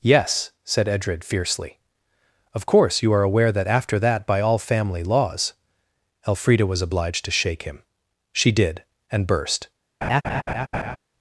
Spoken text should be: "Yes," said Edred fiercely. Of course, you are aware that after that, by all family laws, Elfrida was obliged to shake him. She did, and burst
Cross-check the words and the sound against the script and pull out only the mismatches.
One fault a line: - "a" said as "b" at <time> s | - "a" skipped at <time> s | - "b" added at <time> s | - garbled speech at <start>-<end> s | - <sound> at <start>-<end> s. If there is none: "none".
- laugh at 10.0-11.0 s